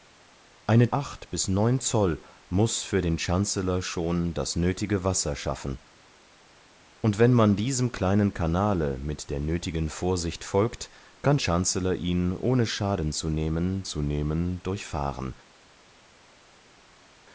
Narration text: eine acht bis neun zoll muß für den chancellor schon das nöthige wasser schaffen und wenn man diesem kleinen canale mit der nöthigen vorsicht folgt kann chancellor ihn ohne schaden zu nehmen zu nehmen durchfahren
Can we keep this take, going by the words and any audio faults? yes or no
yes